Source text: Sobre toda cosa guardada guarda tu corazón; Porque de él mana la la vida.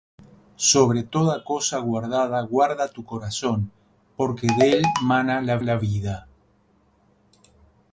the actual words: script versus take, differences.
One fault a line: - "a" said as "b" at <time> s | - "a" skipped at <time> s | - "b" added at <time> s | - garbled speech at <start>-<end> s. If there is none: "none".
none